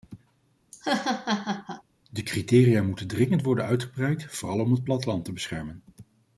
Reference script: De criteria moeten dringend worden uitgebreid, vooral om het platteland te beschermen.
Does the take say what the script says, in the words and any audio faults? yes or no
no